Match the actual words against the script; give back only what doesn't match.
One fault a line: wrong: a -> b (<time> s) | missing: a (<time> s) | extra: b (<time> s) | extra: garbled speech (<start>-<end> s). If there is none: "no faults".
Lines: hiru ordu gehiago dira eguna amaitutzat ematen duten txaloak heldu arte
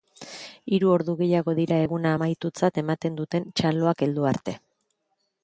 no faults